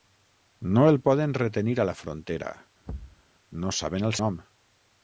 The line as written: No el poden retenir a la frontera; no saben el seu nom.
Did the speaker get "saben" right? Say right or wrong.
right